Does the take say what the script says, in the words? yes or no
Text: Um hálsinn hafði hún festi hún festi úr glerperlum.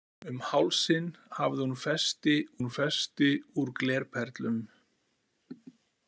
yes